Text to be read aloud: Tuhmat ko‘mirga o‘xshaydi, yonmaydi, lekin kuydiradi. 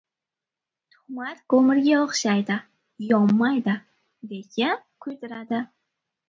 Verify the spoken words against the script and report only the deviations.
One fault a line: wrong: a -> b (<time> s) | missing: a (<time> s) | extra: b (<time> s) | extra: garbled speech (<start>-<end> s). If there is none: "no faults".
no faults